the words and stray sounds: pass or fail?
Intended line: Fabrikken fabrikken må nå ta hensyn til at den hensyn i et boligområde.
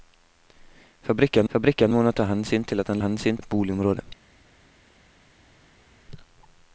pass